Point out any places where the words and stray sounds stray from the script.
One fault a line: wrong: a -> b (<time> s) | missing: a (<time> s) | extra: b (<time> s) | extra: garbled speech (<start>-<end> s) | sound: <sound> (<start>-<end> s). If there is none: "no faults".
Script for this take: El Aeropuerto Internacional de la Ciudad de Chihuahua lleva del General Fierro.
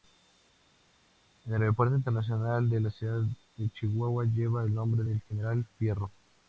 extra: el nombre (4.6 s)